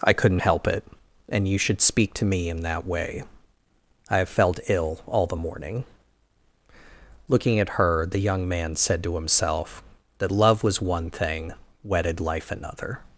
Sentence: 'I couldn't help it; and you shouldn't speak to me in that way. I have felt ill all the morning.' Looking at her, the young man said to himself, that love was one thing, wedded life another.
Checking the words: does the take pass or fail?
fail